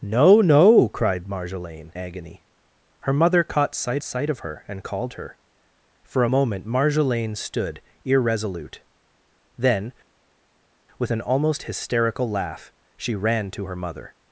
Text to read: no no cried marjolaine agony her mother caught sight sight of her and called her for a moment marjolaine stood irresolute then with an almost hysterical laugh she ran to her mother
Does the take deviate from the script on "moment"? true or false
false